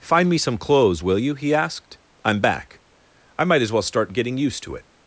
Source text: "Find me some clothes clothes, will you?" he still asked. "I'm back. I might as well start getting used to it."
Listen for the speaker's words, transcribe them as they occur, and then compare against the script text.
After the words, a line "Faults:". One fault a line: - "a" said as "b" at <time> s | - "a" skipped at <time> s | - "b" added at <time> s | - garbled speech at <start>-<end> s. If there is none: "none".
"Find me some clothes, will you?" he asked. "I'm back. I might as well start getting used to it."
Faults:
- "clothes" skipped at 1.0 s
- "still" skipped at 1.5 s